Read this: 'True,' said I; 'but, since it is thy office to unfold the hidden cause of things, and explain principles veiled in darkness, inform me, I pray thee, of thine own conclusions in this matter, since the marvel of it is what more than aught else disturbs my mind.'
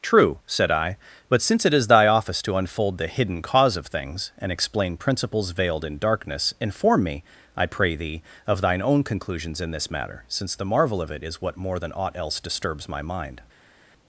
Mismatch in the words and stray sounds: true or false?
false